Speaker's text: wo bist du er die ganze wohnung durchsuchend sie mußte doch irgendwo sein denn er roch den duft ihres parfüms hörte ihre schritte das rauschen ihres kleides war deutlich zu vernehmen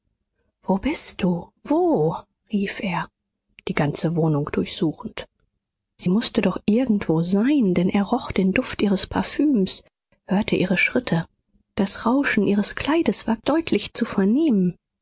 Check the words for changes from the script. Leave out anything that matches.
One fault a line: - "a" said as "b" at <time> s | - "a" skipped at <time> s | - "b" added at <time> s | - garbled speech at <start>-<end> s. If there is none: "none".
- "wo rief" added at 1.6 s